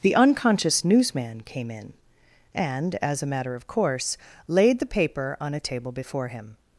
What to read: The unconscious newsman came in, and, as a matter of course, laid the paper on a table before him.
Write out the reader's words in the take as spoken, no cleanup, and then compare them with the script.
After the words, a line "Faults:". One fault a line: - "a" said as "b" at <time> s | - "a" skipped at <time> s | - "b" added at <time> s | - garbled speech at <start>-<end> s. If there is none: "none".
The unconscious newsman came in, and, as a matter of course, laid the paper on a table before him.
Faults:
none